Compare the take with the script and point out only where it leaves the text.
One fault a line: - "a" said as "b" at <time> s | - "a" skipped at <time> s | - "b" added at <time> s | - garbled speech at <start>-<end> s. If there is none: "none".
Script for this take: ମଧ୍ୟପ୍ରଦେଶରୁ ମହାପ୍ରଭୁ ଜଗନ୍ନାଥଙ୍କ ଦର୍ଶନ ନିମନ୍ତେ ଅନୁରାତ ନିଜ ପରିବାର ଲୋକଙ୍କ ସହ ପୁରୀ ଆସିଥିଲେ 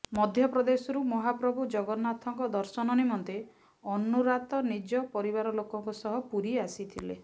none